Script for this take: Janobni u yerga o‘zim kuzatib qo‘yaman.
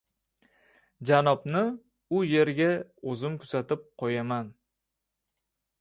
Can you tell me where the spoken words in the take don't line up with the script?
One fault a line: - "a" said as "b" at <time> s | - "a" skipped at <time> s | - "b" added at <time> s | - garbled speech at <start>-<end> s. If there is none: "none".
none